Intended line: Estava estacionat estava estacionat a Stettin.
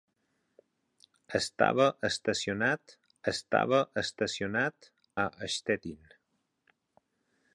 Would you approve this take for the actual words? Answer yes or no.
yes